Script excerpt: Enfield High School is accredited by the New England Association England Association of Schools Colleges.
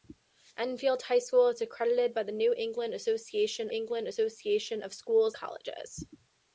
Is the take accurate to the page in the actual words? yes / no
yes